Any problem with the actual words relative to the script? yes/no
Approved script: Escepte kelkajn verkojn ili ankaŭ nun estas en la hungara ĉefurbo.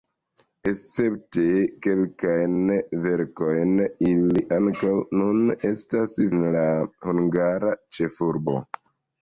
no